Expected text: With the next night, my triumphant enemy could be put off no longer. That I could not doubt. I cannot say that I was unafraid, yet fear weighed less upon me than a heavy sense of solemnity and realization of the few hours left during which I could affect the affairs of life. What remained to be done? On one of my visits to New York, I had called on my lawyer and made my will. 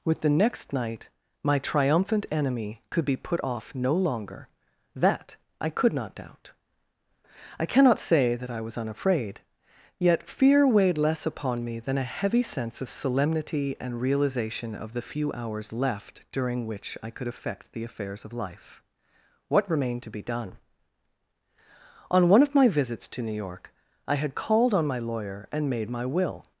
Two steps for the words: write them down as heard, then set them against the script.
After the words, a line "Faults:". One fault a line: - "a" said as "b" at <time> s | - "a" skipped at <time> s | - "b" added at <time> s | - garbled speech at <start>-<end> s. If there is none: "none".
With the next night, my triumphant enemy could be put off no longer. That I could not doubt. I cannot say that I was unafraid, yet fear weighed less upon me than a heavy sense of solemnity and realization of the few hours left during which I could affect the affairs of life. What remained to be done? On one of my visits to New York, I had called on my lawyer and made my will.
Faults:
none